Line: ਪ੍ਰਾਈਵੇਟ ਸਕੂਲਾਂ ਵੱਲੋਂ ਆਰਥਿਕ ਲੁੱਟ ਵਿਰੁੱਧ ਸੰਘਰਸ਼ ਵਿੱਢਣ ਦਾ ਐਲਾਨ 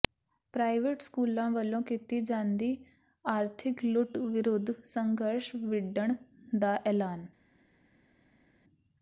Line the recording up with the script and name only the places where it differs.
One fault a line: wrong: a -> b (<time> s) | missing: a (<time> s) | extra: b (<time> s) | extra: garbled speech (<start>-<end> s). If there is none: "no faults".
extra: ਕੀਤੀ ਜਾਂਦੀ (1.8 s)